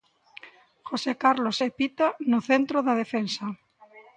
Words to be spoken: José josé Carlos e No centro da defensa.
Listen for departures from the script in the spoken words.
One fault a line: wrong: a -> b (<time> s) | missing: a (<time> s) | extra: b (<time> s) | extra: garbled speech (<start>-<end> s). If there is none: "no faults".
missing: josé (1.1 s)
extra: Pita (1.8 s)